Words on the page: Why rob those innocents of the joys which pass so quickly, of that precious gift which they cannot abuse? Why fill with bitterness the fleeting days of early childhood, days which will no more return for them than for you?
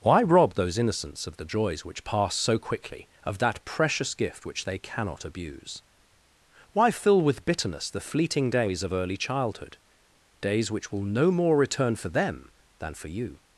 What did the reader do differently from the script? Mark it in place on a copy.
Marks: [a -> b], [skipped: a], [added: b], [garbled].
Why rob those innocents of the joys which pass so quickly, of that precious gift which they cannot abuse? Why fill with bitterness the fleeting days of early childhood, days which will no more return for them than for you?